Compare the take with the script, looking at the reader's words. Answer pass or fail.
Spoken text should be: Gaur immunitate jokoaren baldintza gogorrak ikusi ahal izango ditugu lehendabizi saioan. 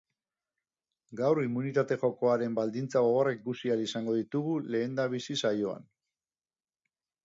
pass